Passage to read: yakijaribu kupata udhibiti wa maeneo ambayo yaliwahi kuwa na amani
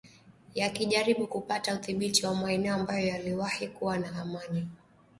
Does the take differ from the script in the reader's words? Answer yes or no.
no